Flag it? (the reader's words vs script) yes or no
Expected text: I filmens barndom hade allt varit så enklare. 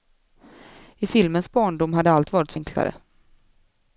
no